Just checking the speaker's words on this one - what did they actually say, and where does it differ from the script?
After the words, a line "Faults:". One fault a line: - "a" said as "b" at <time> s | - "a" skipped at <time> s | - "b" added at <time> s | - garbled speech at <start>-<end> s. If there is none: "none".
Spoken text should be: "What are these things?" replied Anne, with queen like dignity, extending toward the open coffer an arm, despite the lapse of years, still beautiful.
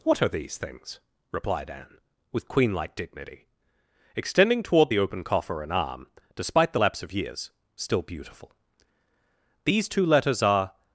"What are these things?" replied Anne, with queen like dignity, extending toward the open coffer an arm, despite the lapse of years, still beautiful. "These two letters are
Faults:
- "These two letters are" added at 9.6 s